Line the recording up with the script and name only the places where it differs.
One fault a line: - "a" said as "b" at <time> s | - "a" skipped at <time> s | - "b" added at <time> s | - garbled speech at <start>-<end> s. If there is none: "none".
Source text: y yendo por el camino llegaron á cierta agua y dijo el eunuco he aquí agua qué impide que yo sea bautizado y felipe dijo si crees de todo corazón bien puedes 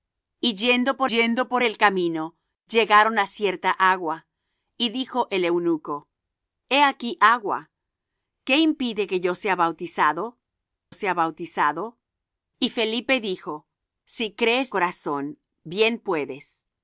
- "yendo por" added at 1.0 s
- "sea bautizado" added at 10.9 s
- "de todo" skipped at 14.7 s